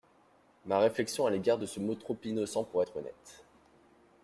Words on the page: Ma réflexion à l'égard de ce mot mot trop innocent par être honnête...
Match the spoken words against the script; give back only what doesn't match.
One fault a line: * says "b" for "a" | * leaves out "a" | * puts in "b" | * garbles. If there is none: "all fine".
* leaves out "mot"
* says "pour" for "par"